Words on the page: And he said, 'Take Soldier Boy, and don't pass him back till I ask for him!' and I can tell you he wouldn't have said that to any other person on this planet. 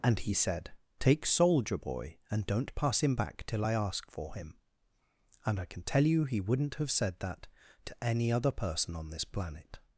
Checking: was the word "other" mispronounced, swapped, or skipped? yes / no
no